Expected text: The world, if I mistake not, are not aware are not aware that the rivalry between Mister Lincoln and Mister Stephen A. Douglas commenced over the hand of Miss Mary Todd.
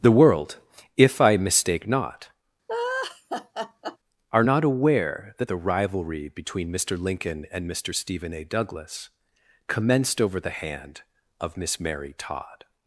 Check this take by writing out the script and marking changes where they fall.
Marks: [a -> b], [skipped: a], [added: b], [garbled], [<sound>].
The world, if I mistake not, [laugh] are not aware [skipped: are not aware] that the rivalry between Mister Lincoln and Mister Stephen A. Douglas commenced over the hand of Miss Mary Todd.